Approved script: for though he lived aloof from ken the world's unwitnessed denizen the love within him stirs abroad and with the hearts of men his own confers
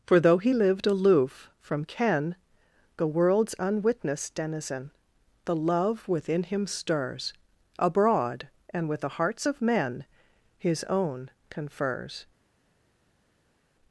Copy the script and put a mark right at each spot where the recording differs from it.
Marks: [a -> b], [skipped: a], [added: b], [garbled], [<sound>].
for though he lived aloof from ken the world's unwitnessed denizen the love within him stirs abroad and with the hearts of men his own confers